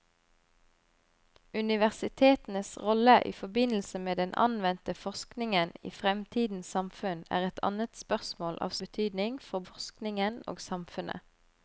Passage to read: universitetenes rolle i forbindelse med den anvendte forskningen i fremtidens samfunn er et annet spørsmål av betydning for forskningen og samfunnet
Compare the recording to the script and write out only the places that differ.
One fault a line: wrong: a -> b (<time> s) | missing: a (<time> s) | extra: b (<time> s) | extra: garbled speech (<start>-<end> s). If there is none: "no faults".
no faults